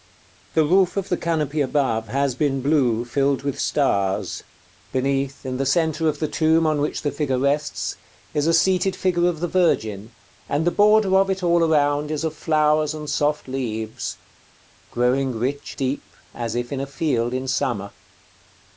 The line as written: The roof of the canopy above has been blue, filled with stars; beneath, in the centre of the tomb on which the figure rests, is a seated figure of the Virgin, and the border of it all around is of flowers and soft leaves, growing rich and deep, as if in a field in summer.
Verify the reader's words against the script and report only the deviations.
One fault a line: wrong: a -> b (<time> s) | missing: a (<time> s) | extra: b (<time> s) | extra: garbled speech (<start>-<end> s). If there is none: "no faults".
missing: and (15.7 s)